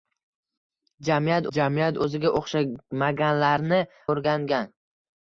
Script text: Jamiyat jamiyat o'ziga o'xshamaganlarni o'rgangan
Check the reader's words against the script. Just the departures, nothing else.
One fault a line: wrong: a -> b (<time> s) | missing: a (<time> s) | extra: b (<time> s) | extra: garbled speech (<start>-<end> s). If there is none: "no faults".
no faults